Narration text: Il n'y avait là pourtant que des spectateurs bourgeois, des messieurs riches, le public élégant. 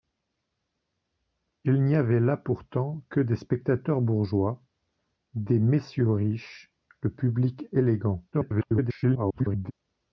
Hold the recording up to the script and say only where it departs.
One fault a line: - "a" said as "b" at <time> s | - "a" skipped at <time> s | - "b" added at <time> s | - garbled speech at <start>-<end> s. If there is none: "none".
- garbled speech at 8.3-9.7 s